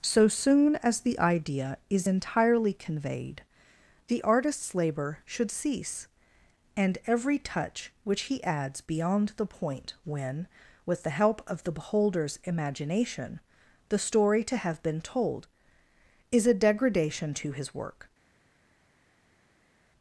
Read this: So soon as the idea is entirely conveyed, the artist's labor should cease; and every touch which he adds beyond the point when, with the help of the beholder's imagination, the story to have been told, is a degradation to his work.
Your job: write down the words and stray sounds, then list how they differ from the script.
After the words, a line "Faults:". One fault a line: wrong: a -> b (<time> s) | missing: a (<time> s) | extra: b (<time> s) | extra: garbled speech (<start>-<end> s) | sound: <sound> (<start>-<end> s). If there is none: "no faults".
So soon as the idea is entirely conveyed, the artist's labor should cease; and every touch which he adds beyond the point when, with the help of the beholder's imagination, the story to have been told, is a degradation to his work.
Faults:
no faults